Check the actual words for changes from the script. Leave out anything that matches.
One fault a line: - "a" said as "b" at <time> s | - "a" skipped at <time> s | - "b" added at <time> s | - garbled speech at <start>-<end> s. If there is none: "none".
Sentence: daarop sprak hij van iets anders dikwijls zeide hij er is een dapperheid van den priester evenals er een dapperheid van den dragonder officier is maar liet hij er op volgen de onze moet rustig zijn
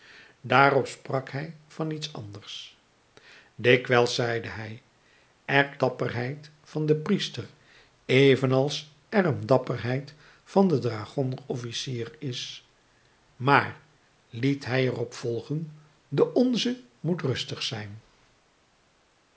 - "is een" skipped at 5.8 s